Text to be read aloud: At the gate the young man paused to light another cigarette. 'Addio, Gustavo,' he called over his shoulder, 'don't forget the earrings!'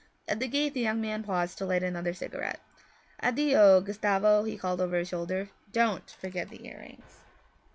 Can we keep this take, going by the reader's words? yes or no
yes